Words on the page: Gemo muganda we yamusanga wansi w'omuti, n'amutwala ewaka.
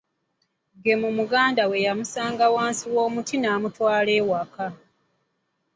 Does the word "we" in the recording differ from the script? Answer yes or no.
no